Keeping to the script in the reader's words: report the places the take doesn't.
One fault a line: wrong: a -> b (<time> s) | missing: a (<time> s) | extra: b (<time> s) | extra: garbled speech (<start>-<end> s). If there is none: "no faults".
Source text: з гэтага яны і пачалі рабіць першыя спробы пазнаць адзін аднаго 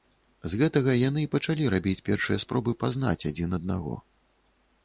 no faults